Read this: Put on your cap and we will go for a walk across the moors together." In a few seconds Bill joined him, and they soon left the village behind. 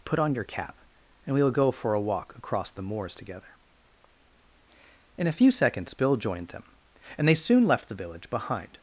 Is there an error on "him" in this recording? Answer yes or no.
yes